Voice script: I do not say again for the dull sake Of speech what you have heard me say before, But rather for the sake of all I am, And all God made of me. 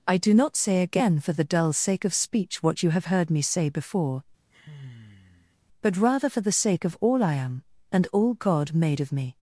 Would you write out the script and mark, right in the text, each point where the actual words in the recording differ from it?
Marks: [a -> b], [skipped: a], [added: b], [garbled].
I do not say again for the dull sake Of speech what you have heard me say before, But rather for the sake of all I am, And all God made of me.